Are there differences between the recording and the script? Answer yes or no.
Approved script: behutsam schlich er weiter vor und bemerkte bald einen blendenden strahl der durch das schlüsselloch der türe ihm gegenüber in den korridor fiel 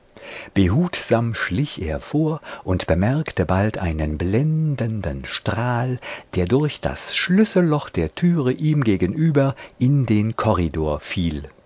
yes